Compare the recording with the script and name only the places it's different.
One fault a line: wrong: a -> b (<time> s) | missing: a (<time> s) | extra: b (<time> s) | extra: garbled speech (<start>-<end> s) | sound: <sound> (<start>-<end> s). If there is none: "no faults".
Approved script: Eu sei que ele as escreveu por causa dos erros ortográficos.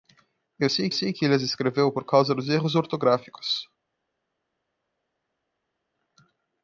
extra: sei (0.9 s)